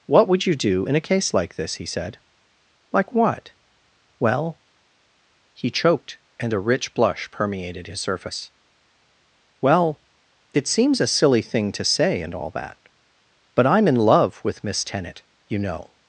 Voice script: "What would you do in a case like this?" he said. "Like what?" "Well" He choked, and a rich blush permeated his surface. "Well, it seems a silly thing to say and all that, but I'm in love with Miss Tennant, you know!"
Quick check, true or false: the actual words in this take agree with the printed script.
true